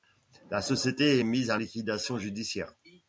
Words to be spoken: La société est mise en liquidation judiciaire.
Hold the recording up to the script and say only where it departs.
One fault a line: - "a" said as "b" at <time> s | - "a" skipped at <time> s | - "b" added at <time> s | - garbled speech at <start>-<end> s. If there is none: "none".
none